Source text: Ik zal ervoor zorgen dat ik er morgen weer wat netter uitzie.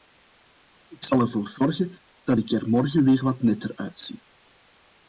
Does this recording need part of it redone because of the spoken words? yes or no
no